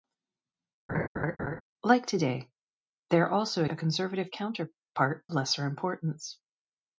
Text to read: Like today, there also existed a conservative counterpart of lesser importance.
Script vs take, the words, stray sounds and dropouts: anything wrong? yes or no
yes